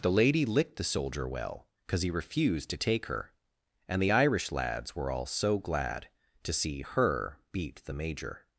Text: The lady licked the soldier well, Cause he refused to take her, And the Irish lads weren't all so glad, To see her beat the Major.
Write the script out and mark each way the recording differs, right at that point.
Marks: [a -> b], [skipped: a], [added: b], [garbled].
The lady licked the soldier well, Cause he refused to take her, And the Irish lads [weren't -> were] all so glad, To see her beat the Major.